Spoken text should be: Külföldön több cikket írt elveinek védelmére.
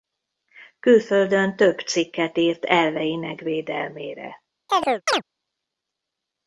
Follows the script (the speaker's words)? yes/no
yes